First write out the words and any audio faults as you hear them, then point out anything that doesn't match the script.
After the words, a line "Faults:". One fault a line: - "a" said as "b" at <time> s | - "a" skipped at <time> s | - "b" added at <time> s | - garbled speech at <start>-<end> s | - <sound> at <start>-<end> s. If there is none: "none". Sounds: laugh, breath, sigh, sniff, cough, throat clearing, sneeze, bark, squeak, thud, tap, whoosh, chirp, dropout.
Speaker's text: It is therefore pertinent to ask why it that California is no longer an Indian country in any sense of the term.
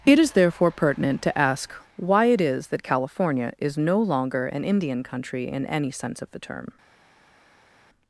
It is therefore pertinent to ask why it is that California is no longer an Indian country in any sense of the term.
Faults:
- "is" added at 2.4 s